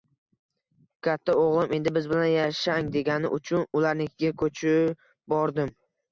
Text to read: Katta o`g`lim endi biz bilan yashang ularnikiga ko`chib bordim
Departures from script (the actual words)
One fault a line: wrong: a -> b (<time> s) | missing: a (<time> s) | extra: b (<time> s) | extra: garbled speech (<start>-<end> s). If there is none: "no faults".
extra: degani uchun (3.0 s)